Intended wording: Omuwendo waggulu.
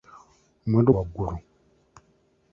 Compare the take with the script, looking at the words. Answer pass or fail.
pass